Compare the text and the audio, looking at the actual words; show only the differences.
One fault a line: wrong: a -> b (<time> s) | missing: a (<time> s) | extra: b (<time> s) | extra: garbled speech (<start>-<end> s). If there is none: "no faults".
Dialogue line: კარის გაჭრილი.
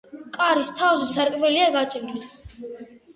extra: თავზე სარკმელია (0.8 s)